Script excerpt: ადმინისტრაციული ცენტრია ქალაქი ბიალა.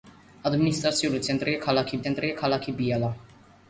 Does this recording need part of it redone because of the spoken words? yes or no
yes